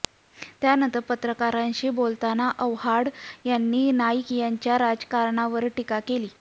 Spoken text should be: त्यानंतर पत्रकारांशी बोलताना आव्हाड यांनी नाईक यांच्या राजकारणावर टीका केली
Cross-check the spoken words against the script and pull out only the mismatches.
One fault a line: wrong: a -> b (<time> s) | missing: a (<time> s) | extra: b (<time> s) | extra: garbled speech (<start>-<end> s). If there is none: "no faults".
no faults